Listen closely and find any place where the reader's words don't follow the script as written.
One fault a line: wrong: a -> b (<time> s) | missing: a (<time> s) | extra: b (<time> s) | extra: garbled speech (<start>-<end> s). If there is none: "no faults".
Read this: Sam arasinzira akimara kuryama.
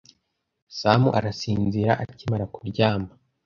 no faults